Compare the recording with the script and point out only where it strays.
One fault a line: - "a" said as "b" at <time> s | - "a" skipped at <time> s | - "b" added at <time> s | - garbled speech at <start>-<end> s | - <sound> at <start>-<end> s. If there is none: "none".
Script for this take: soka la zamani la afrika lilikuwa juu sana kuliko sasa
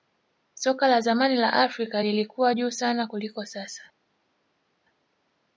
none